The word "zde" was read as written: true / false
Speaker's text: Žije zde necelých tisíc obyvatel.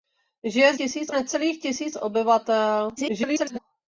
false